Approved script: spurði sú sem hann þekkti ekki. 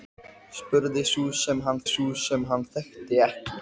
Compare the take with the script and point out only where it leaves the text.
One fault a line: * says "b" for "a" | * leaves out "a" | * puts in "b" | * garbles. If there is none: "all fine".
* puts in "sú sem hann"